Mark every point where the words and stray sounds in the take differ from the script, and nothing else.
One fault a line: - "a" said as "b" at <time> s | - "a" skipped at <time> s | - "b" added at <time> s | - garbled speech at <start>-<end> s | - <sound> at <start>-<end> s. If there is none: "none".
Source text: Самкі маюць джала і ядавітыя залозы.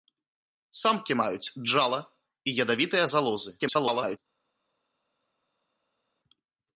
- garbled speech at 3.6-4.2 s